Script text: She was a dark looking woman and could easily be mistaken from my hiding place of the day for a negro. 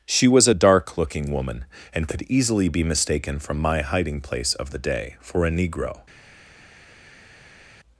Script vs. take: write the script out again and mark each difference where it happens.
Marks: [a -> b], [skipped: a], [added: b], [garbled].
She was a dark looking woman and could easily be mistaken from my hiding place of the day for a negro.